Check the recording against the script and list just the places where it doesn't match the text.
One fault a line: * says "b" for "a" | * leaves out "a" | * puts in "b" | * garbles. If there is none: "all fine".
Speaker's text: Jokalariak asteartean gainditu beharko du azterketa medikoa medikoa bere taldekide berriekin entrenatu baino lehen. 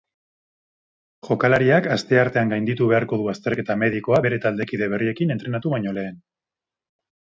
* leaves out "medikoa"